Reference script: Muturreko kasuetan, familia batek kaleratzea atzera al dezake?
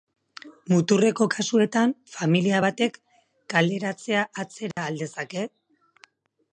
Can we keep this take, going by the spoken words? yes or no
yes